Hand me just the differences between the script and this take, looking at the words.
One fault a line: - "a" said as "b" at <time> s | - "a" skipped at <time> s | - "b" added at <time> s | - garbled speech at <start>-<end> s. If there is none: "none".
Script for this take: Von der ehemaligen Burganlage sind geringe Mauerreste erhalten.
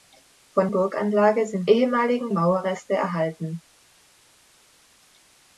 - "der ehemaligen" skipped at 0.7 s
- "geringe" said as "ehemaligen" at 1.7 s